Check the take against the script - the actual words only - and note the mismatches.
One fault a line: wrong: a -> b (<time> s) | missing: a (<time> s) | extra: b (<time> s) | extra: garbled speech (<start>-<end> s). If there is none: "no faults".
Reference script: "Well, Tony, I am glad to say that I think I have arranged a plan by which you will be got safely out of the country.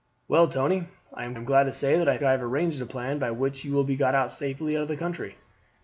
extra: am (1.4 s)
missing: think (2.2 s)